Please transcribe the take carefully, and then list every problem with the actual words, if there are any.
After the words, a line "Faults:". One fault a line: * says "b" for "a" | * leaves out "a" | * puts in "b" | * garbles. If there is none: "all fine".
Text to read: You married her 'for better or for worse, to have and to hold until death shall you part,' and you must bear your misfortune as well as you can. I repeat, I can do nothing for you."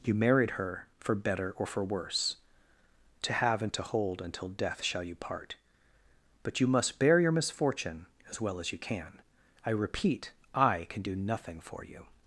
You married her 'for better or for worse, to have and to hold until death shall you part,' but you must bear your misfortune as well as you can. I repeat, I can do nothing for you."
Faults:
* says "but" for "and"